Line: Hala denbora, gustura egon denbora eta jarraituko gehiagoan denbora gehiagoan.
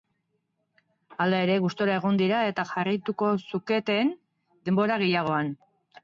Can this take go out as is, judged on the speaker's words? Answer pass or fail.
fail